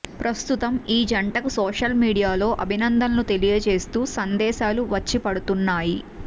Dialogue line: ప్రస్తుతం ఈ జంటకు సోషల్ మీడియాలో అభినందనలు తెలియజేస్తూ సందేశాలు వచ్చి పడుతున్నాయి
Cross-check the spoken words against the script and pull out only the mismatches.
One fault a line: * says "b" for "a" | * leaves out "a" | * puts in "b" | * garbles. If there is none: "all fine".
all fine